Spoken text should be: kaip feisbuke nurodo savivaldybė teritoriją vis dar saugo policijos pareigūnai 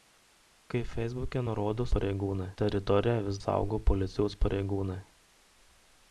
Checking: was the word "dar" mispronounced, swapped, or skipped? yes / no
yes